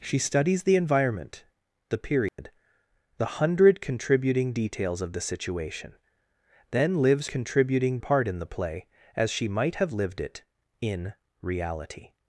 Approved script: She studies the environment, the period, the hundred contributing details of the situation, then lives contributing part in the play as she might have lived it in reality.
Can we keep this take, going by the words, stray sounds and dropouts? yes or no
no